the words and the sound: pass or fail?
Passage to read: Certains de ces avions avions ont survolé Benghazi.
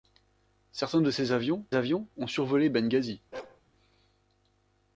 fail